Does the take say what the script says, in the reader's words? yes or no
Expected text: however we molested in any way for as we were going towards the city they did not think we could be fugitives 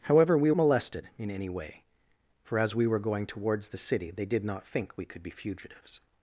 yes